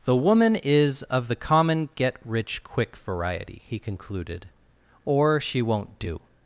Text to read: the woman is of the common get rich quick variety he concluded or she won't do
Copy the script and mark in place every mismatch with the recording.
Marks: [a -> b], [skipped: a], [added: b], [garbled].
the woman is of the common get rich quick variety he concluded or she won't do